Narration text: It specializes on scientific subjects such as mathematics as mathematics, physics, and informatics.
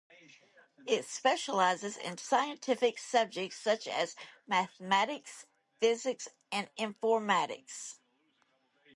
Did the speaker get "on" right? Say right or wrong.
wrong